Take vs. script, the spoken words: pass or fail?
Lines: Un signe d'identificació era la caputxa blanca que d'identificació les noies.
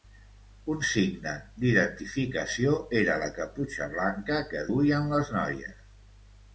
fail